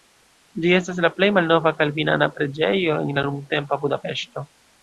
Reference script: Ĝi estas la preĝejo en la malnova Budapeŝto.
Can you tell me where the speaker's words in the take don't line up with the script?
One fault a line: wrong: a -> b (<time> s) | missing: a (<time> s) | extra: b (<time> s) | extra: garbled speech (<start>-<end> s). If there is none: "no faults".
extra: plej malnova kalvinana (1.2 s)
wrong: malnova -> nuntempa (3.3 s)